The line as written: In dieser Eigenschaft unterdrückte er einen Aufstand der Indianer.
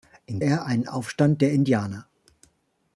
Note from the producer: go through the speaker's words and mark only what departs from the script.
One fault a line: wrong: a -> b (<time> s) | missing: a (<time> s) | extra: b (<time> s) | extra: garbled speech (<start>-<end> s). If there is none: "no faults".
missing: dieser Eigenschaft unterdrückte (0.4 s)